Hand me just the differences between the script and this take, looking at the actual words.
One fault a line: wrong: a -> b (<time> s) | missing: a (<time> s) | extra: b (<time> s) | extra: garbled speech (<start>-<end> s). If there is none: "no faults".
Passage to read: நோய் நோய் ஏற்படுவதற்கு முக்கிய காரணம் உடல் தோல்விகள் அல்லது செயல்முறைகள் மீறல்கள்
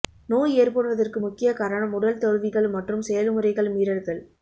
missing: நோய் (0.6 s)
wrong: அல்லது -> மற்றும் (2.8 s)